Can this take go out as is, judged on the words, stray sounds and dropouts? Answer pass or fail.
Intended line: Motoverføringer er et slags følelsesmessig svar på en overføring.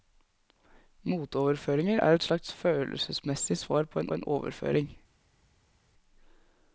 fail